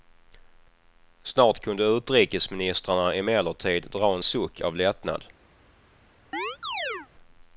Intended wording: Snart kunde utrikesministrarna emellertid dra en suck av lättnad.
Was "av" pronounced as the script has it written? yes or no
yes